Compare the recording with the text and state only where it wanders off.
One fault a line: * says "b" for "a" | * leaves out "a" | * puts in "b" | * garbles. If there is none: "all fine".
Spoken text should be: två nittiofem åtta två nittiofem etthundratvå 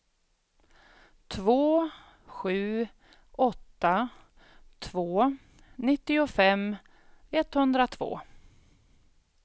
* says "sju" for "nittiofem"